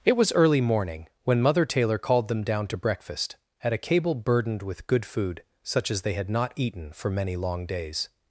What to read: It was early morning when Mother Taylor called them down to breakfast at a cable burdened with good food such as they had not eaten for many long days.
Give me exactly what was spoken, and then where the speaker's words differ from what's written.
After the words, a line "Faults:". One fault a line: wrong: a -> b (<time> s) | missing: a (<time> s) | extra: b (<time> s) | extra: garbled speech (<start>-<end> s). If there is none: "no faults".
It was early morning when Mother Taylor called them down to breakfast at a cable burdened with good food such as they had not eaten for many long days.
Faults:
no faults